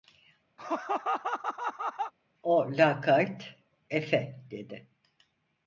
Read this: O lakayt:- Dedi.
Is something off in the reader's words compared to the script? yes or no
yes